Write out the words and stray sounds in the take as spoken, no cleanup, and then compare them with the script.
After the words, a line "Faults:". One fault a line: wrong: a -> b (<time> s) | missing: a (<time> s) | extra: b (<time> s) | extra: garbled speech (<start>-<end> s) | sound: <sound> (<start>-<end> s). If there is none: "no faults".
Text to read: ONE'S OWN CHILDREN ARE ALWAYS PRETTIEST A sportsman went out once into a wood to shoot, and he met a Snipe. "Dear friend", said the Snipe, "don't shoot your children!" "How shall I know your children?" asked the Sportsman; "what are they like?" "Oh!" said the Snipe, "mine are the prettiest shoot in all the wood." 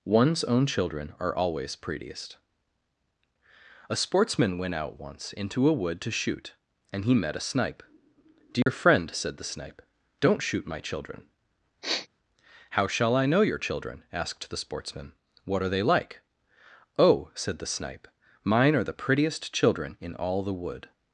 ONE'S OWN CHILDREN ARE ALWAYS PRETTIEST A sportsman went out once into a wood to shoot, and he met a Snipe. "Dear friend", said the Snipe, "don't shoot my children!" "How shall I know your children?" asked the Sportsman; "what are they like?" "Oh!" said the Snipe, "mine are the prettiest children in all the wood."
Faults:
sound: dropout (8.6-8.7 s)
wrong: your -> my (10.7 s)
sound: sniff (11.8-12.1 s)
wrong: shoot -> children (19.5 s)